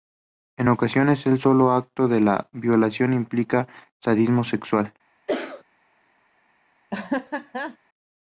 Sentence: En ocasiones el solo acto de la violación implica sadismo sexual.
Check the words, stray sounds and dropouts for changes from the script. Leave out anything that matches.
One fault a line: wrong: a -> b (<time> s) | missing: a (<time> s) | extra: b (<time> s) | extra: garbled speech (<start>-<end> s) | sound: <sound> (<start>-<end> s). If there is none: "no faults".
sound: cough (5.3-5.6 s)
sound: laugh (6.9-7.8 s)